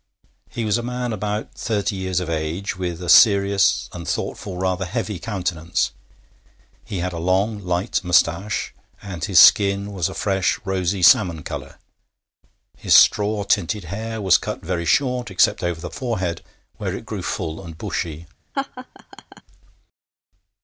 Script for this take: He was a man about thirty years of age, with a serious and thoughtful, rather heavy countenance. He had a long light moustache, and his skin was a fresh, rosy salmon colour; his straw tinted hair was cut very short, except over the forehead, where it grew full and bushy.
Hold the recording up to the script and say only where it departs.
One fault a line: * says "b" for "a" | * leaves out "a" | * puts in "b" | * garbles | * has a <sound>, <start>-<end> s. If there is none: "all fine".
* has a laugh, 18.5-19.4 s